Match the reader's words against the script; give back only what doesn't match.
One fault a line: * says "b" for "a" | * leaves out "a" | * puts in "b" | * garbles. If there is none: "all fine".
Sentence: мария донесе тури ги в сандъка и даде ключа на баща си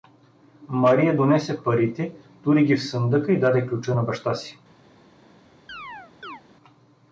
* puts in "парите"